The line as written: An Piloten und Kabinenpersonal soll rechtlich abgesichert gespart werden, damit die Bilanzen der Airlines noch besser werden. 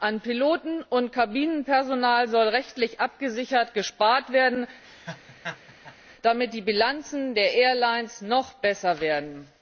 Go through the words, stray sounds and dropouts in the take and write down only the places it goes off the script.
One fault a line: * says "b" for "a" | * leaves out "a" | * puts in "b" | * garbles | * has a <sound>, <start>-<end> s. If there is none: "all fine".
* has a laugh, 4.8-6.0 s